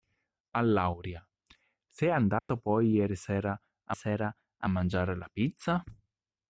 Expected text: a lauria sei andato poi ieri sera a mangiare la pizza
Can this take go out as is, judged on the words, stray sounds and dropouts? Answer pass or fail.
fail